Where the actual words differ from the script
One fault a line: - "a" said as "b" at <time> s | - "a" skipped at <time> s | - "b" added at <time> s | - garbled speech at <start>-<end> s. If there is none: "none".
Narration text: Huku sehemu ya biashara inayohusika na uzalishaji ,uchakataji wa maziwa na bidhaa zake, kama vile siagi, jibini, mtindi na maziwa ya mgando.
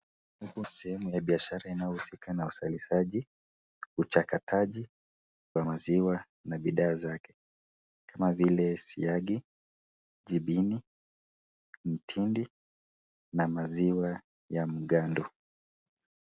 none